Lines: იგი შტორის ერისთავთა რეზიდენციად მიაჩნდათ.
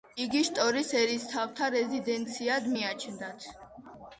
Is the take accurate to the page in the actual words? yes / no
yes